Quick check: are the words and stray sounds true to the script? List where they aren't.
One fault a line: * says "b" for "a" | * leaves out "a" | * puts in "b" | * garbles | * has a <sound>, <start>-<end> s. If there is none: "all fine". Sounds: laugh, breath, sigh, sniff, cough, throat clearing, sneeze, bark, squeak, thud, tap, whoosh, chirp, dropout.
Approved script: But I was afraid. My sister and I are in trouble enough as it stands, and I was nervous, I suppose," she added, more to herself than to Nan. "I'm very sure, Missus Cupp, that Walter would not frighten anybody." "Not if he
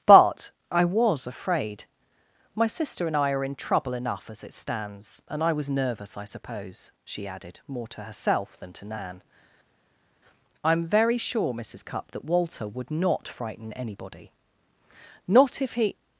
all fine